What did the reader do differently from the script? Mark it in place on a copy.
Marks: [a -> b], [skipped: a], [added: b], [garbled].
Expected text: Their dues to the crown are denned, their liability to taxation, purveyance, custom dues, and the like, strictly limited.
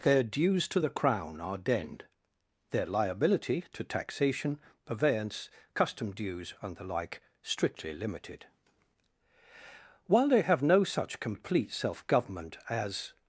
Their dues to the crown are denned, their liability to taxation, purveyance, custom dues, and the like, strictly limited. [added: While they have no such complete self government as]